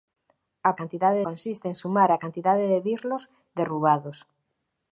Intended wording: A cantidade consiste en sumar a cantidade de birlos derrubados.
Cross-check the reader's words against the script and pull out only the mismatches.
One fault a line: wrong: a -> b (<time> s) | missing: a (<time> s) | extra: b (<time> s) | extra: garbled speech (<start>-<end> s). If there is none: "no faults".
no faults